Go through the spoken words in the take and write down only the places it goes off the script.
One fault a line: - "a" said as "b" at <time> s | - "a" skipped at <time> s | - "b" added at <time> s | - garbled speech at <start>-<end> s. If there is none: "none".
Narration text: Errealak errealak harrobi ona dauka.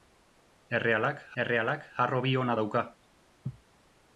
none